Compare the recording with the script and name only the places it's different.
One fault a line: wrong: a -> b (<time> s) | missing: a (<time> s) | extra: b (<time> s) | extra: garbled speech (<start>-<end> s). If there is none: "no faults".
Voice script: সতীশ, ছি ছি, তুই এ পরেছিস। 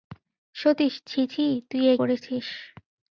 no faults